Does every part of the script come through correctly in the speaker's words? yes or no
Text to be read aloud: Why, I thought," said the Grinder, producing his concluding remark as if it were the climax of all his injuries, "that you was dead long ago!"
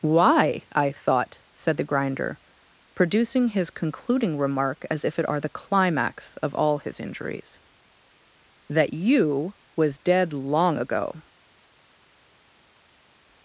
no